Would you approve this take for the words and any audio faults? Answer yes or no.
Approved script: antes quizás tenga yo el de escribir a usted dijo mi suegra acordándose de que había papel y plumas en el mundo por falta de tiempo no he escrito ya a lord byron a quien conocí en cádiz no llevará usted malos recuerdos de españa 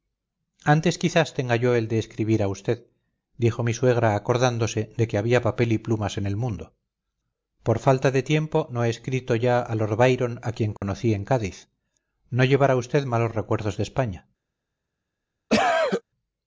no